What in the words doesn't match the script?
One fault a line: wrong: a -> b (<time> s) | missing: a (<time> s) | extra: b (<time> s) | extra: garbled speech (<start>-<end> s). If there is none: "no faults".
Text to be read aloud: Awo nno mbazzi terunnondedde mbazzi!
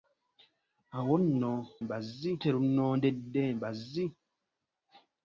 no faults